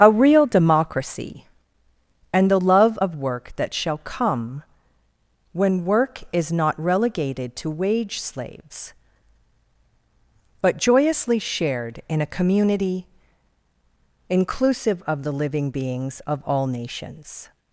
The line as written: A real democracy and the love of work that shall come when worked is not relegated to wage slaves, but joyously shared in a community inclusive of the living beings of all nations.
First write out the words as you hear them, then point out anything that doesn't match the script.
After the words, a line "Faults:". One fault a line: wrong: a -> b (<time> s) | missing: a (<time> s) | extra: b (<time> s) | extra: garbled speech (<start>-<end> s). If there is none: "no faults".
A real democracy and the love of work that shall come when work is not relegated to wage slaves, but joyously shared in a community inclusive of the living beings of all nations.
Faults:
wrong: worked -> work (5.8 s)